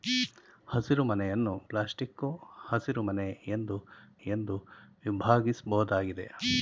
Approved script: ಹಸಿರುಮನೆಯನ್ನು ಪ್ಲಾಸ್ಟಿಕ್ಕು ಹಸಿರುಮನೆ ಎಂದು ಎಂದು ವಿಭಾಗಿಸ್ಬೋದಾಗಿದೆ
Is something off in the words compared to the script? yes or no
no